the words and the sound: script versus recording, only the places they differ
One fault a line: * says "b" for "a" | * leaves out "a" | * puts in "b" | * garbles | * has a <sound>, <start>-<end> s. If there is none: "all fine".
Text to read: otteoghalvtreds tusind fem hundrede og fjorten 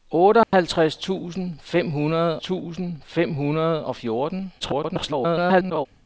* has a dropout, 0.4-0.5 s
* puts in "tusind fem hundrede"
* garbles